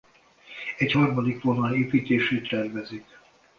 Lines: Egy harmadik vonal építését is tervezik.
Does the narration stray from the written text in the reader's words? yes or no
yes